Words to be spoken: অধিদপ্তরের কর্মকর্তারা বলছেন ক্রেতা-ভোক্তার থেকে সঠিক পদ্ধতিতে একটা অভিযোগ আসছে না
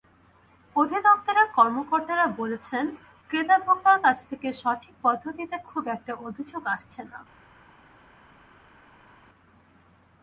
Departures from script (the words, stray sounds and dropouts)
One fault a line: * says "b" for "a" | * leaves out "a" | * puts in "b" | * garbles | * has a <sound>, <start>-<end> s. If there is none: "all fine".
* puts in "কাছ"
* puts in "খুব"